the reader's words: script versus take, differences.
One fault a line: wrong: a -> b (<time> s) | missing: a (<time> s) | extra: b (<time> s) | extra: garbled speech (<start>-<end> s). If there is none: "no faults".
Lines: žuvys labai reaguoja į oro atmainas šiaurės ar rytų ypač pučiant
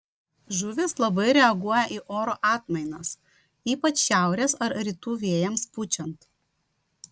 extra: ypač (3.7 s)
wrong: ypač -> vėjams (5.3 s)